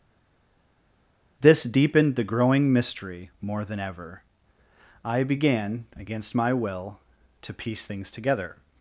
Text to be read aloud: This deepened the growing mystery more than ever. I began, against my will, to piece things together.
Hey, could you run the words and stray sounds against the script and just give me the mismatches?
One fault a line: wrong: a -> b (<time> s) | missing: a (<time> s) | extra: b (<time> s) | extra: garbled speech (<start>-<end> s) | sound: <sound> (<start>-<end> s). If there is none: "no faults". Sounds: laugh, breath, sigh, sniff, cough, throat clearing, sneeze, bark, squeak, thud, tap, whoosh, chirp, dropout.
no faults